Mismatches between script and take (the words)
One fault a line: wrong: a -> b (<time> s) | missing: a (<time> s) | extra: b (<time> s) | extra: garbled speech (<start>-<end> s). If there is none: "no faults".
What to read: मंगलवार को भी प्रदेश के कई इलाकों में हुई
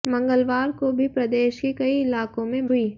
no faults